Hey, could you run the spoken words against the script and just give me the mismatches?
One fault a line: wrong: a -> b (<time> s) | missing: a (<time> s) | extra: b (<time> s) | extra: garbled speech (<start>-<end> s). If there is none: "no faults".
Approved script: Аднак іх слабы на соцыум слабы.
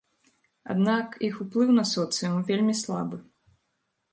wrong: слабы -> уплыў (1.4 s)
extra: вельмі (2.5 s)